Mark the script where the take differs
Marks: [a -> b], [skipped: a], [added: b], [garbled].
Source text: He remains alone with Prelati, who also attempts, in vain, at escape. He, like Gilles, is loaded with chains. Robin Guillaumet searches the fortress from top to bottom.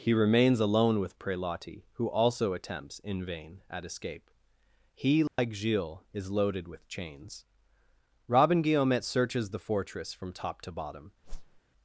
He remains alone with Prelati, who also attempts, in vain, at escape. He, like Gilles, is loaded with chains. Robin Guillaumet searches the fortress from top to bottom.